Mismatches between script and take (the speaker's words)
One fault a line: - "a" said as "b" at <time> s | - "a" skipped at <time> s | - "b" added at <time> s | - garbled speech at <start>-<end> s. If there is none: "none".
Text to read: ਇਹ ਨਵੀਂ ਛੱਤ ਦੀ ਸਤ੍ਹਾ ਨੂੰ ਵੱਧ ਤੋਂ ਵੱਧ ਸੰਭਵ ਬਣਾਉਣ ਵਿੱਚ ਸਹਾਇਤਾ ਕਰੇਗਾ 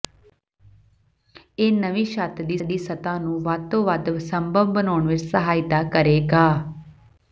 - "ਦੀ" added at 2.6 s